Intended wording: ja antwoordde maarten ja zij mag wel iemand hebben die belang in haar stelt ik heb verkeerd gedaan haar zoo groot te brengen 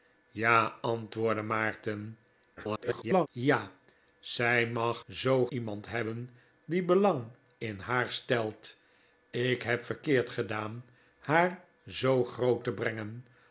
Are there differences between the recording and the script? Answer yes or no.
yes